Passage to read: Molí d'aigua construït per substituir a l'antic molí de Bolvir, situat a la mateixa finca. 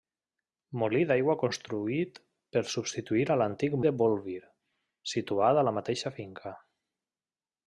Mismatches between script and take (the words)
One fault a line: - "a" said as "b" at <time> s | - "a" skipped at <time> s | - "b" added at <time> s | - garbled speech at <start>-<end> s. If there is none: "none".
- "molí" skipped at 3.8 s